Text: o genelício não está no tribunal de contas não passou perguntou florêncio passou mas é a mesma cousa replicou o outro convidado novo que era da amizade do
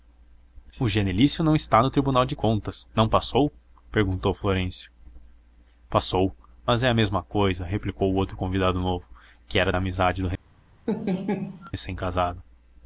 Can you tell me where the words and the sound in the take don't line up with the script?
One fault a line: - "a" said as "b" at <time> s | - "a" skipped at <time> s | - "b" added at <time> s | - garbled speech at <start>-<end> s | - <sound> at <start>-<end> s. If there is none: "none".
- laugh at 10.9-11.7 s